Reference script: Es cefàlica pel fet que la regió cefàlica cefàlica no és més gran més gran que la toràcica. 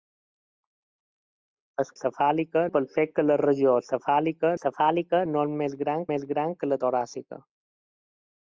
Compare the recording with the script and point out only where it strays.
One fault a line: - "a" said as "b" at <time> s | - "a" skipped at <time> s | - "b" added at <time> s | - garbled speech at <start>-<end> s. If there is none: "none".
none